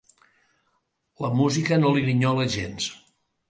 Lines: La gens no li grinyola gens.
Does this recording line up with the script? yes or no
no